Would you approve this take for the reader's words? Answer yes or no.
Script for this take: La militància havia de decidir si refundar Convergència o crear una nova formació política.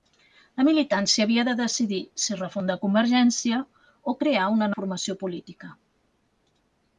no